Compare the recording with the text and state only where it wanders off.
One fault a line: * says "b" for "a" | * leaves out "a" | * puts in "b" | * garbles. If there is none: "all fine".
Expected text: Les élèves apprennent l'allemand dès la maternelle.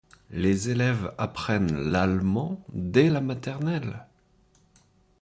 all fine